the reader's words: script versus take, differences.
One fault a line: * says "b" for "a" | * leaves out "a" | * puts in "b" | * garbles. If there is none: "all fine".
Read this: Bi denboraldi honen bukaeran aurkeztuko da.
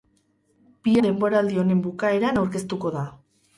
all fine